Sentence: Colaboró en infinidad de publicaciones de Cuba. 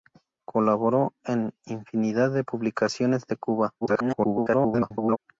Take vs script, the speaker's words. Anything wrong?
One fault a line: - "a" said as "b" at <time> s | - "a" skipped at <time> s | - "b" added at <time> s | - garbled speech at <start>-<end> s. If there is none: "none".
- garbled speech at 3.8-5.2 s